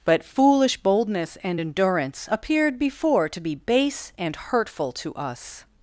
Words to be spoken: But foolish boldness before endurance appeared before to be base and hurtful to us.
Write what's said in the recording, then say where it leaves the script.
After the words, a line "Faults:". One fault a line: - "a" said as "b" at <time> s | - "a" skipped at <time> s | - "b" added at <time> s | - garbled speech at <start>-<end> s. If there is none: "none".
But foolish boldness and endurance appeared before to be base and hurtful to us.
Faults:
- "before" said as "and" at 1.4 s